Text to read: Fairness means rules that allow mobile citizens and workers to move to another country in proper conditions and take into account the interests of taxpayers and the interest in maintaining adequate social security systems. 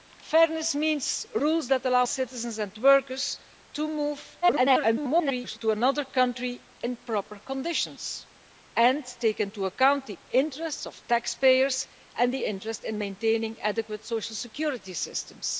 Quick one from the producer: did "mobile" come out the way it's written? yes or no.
no